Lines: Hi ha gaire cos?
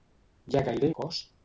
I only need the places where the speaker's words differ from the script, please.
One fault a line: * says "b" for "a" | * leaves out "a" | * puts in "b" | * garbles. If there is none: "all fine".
all fine